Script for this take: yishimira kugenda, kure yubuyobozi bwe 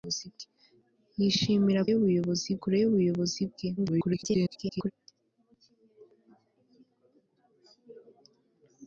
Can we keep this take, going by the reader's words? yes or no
no